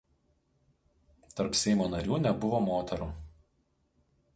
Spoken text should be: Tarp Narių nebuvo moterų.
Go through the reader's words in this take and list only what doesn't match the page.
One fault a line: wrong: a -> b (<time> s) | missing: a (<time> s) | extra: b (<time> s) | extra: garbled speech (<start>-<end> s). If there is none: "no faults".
extra: Seimo (1.6 s)